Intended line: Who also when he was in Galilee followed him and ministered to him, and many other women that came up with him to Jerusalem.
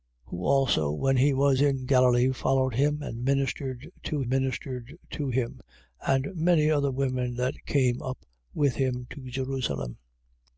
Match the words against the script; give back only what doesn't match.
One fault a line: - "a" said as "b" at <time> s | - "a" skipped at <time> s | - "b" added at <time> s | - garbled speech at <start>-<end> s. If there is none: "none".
- "ministered to" added at 4.3 s